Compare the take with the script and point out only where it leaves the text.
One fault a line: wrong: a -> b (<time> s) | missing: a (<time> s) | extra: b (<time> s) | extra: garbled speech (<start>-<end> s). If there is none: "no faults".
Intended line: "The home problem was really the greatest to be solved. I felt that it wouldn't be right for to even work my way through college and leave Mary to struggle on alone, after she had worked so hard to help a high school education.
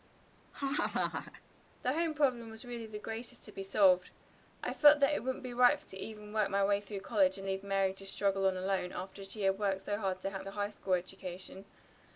no faults